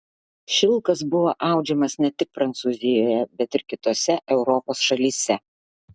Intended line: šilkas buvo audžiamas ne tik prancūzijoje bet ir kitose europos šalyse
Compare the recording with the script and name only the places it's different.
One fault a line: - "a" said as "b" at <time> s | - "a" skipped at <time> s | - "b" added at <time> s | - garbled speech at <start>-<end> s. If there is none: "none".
none